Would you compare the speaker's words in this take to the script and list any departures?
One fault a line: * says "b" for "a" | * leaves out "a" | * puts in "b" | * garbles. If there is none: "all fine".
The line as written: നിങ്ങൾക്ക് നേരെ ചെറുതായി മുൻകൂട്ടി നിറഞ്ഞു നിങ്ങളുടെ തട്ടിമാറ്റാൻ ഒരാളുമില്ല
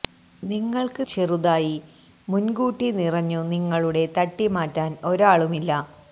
* leaves out "നേരെ"